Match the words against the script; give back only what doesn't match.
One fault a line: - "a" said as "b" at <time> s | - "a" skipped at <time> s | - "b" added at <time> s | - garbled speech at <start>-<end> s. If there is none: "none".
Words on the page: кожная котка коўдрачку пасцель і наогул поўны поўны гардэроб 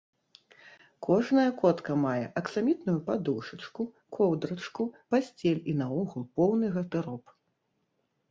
- "мае аксамітную падушачку" added at 2.0 s
- "поўны" skipped at 6.7 s